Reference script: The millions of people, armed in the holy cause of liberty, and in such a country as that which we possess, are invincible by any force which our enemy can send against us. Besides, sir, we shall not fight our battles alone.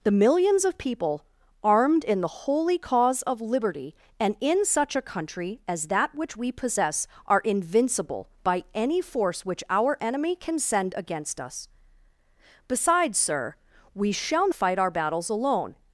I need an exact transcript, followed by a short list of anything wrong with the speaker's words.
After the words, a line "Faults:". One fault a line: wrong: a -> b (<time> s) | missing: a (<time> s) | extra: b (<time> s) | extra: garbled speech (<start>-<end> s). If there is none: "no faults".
The millions of people, armed in the holy cause of liberty, and in such a country as that which we possess, are invincible by any force which our enemy can send against us. Besides, sir, we shall fight our battles alone.
Faults:
missing: not (14.5 s)